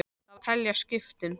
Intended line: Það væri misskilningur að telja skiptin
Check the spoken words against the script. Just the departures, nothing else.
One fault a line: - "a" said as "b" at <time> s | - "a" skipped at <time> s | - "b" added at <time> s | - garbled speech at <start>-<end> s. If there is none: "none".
- "væri misskilningur" skipped at 0.4 s